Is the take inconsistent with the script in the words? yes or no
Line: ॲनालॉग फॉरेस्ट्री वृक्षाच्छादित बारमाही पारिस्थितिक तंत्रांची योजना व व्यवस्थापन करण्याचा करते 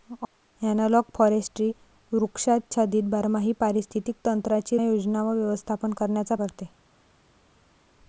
no